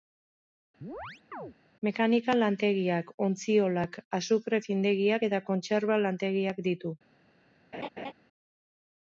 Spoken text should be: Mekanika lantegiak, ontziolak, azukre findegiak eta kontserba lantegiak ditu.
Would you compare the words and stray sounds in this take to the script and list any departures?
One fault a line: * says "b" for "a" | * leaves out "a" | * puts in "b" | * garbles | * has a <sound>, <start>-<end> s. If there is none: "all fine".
* has a chirp, 0.8-1.5 s
* has a laugh, 7.7-8.1 s